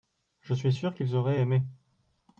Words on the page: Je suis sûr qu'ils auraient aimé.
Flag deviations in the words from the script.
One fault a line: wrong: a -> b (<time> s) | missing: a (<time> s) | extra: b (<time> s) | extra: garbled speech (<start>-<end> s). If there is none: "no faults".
no faults